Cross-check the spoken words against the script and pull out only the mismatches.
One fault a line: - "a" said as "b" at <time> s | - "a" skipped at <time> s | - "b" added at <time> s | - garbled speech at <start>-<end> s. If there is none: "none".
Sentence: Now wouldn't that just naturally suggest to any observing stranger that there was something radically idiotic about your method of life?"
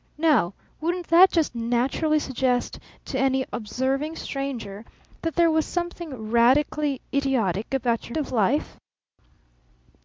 - "method" skipped at 8.2 s